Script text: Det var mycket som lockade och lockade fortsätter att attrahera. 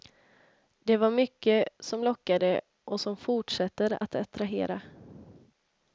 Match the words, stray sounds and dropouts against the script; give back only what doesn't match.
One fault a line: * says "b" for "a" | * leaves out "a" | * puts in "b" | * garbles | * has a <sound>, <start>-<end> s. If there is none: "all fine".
* says "som" for "lockade"